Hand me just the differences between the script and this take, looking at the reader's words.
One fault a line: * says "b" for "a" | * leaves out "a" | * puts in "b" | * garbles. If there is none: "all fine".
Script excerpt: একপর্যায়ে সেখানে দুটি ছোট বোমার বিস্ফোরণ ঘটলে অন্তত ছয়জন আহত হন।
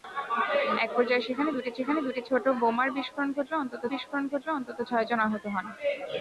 * puts in "সেখানে দুটি"
* puts in "বিস্ফোরণ ঘটলে অন্তত"